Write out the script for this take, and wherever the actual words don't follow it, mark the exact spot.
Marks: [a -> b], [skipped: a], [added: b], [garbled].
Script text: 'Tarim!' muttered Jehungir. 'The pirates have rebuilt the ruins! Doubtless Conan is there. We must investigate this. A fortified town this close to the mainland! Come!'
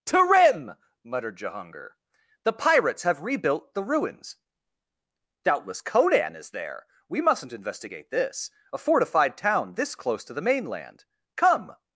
'Tarim!' muttered Jehungir. 'The pirates have rebuilt the ruins! Doubtless Conan is there. We [must -> mustn't] investigate this. A fortified town this close to the mainland! Come!'